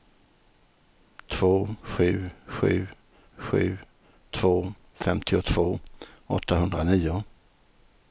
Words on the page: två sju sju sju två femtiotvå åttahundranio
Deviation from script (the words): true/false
false